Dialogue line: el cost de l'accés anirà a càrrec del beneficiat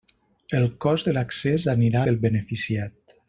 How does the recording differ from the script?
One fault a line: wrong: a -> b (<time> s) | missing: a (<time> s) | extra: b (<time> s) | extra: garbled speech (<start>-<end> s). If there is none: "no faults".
missing: a càrrec (2.0 s)